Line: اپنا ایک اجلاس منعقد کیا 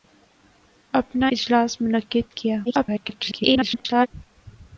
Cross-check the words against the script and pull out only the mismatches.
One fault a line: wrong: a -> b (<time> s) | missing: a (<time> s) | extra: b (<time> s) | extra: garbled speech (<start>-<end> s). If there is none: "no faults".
missing: ایک (1.3 s)
extra: garbled speech (2.6-4.1 s)